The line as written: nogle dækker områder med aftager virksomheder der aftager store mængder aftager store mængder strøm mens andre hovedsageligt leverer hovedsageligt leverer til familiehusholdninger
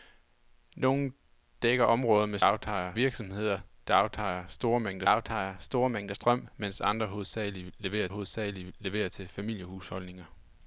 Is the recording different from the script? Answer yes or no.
no